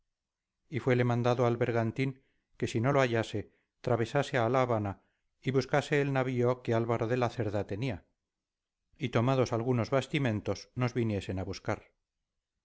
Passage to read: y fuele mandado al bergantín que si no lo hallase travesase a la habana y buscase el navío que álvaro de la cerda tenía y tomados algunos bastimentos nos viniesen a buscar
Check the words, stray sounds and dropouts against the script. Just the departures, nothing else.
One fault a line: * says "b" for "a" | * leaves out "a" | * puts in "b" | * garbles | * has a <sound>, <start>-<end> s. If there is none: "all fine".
all fine